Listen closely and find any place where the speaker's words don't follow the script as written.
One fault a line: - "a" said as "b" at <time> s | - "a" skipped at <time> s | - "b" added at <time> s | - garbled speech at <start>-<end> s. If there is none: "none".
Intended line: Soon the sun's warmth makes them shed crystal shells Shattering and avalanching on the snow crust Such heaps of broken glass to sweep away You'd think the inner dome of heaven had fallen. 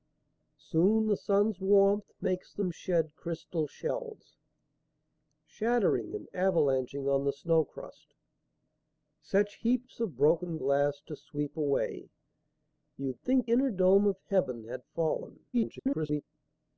- "the" skipped at 13.5 s
- garbled speech at 15.5-16.2 s